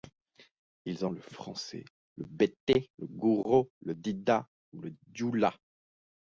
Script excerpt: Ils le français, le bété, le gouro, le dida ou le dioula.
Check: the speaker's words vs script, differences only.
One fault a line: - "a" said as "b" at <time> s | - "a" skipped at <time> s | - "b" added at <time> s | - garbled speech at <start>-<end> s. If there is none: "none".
none